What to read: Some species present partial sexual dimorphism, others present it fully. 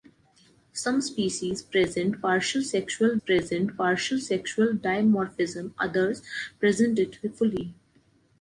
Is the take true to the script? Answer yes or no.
no